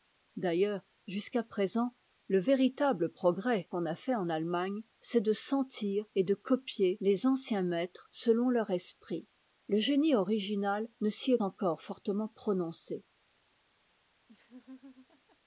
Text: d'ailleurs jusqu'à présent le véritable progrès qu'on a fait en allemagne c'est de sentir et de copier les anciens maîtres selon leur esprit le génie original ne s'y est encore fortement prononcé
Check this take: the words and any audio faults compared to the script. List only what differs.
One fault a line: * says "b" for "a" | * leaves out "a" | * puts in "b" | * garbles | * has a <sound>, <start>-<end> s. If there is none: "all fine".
* has a laugh, 14.3-15.4 s